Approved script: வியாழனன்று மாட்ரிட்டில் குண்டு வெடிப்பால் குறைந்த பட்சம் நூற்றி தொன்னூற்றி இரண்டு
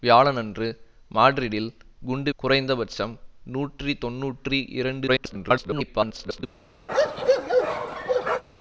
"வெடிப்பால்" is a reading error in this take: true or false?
true